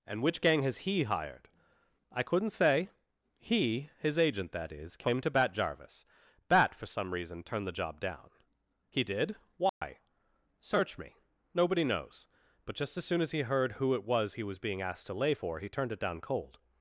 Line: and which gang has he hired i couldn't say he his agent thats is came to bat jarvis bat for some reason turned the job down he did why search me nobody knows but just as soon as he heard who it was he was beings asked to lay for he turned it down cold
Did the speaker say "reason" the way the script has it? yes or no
yes